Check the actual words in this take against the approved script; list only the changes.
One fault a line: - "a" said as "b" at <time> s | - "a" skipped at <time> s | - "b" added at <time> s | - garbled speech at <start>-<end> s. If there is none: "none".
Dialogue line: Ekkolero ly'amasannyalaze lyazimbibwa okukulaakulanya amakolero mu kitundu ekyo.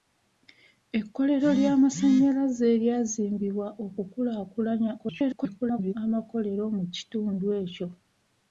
- garbled speech at 5.0-5.9 s